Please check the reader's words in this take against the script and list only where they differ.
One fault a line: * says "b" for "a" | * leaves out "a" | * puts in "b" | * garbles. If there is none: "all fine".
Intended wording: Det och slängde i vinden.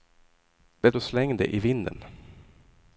all fine